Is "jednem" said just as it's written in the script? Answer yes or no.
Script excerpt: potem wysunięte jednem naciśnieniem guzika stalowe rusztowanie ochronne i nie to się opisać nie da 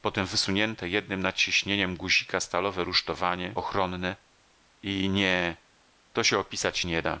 yes